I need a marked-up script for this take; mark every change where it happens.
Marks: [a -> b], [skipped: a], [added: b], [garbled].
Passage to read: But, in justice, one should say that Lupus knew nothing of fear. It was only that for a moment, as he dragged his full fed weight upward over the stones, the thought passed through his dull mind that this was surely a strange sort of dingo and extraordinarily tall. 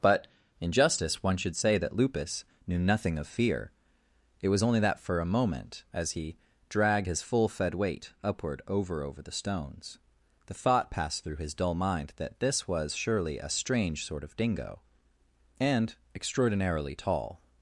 But, in justice, one should say that Lupus knew nothing of fear. It was only that for a moment, as he dragged his full fed weight upward over [added: over] the stones, the thought passed through his dull mind that this was surely a strange sort of dingo and extraordinarily tall.